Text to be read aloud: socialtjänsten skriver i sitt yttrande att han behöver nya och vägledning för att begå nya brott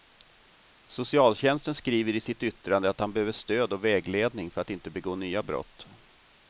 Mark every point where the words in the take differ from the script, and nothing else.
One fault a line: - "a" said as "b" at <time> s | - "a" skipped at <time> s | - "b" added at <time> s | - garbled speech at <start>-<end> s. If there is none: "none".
- "nya" said as "stöd" at 3.3 s
- "inte" added at 4.7 s